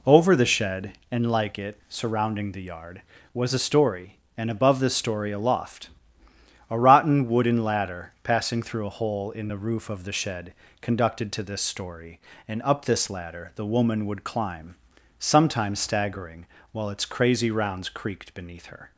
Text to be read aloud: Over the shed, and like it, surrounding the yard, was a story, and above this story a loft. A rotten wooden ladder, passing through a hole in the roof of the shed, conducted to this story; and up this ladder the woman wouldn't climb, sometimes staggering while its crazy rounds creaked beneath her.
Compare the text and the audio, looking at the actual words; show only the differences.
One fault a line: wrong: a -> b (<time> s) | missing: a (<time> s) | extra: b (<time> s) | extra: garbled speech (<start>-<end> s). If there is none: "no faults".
wrong: wouldn't -> would (14.1 s)